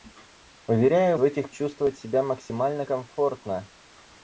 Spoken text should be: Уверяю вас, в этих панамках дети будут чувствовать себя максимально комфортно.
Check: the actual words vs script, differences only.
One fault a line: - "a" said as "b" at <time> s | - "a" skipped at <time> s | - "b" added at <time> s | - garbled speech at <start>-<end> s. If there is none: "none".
- "вас" skipped at 1.2 s
- "панамках дети будут" skipped at 1.5 s